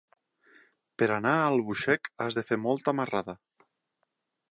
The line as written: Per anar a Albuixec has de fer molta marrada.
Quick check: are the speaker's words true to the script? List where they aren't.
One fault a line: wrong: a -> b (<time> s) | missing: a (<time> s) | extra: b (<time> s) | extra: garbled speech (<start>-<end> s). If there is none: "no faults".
no faults